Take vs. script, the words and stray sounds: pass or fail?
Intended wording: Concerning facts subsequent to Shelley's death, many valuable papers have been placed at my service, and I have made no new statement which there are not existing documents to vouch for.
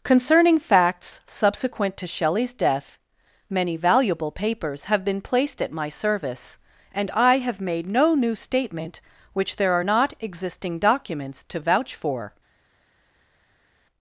pass